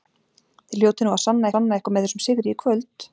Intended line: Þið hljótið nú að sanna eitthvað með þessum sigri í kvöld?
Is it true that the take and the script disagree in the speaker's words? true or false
true